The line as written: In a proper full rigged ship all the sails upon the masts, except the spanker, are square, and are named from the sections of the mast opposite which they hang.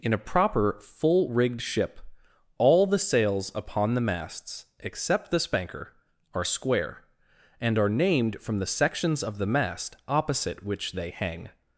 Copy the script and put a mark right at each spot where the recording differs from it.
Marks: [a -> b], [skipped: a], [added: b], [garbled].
In a proper full rigged ship all the sails upon the masts, except the spanker, are square, and are named from the sections of the mast opposite which they hang.